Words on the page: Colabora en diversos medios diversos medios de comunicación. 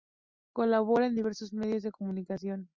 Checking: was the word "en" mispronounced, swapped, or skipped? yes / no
no